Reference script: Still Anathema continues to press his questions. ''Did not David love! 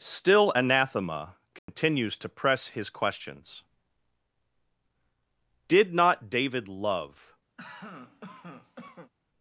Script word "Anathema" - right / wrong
right